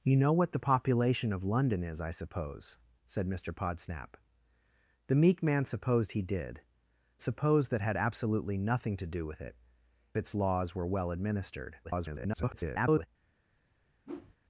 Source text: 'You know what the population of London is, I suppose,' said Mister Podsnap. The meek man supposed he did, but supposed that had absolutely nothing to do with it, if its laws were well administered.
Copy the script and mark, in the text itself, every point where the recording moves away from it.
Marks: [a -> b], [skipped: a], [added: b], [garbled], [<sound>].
'You know what the population of London is, I suppose,' said Mister Podsnap. The meek man supposed he did, [skipped: but] supposed that had absolutely nothing to do with it, [skipped: if] its laws were well administered. [garbled] [whoosh]